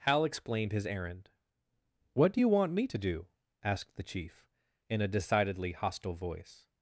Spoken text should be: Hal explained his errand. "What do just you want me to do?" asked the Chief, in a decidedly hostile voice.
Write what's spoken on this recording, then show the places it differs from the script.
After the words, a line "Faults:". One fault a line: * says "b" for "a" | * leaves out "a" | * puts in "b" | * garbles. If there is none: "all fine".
Hal explained his errand. "What do you want me to do?" asked the Chief, in a decidedly hostile voice.
Faults:
* leaves out "just"